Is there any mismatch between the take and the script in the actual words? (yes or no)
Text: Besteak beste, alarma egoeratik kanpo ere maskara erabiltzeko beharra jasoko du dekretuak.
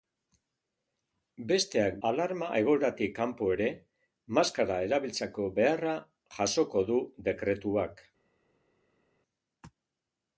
yes